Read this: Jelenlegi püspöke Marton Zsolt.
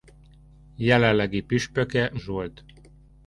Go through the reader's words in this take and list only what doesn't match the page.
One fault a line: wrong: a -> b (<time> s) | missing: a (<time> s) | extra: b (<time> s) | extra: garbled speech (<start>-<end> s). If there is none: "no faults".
missing: Marton (2.1 s)